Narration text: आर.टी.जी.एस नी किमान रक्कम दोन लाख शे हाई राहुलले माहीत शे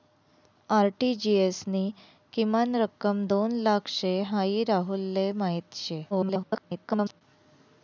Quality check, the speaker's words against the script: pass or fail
fail